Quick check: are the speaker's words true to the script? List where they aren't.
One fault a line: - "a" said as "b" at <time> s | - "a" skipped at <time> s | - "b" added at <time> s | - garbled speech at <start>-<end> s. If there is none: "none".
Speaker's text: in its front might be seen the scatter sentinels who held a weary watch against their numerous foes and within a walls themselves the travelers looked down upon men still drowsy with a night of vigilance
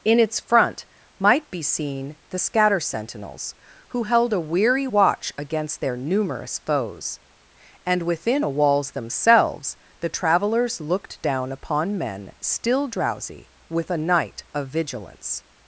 none